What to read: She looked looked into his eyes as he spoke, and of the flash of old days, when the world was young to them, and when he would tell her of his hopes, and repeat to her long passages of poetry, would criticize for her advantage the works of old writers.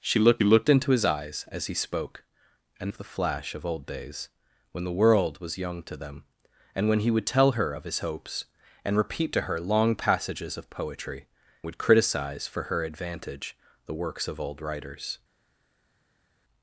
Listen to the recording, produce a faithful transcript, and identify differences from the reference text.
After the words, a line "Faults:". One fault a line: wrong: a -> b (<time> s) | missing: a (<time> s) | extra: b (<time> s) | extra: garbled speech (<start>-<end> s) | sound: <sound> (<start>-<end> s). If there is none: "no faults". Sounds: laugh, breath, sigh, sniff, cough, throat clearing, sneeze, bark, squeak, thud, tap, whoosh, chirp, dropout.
She looked looked into his eyes as he spoke, and of the flash of old days, when the world was young to them, and when he would tell her of his hopes, and repeat to her long passages of poetry, would criticize for her advantage the works of old writers.
Faults:
no faults